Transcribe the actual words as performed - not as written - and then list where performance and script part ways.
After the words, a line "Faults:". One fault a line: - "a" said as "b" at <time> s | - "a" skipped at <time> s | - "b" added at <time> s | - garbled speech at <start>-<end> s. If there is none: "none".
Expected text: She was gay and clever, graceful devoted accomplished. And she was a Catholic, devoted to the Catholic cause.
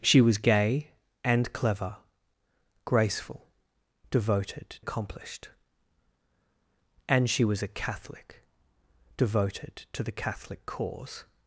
She was gay and clever, graceful devoted accomplished. And she was a Catholic, devoted to the Catholic cause.
Faults:
none